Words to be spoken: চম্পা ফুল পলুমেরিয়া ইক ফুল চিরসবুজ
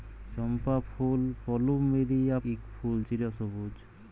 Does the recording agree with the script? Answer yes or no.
yes